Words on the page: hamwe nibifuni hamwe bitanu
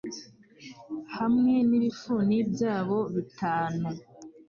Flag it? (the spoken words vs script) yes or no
yes